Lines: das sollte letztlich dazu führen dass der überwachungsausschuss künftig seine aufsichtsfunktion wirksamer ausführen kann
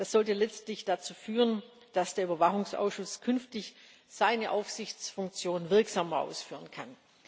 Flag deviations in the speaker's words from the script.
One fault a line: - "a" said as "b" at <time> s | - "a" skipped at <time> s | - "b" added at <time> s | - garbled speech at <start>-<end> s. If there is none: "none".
none